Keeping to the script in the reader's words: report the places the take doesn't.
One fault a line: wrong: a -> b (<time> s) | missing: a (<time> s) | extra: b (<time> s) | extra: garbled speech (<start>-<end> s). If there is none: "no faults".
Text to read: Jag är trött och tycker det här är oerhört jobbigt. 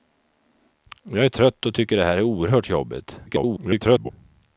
extra: garbled speech (3.3-4.1 s)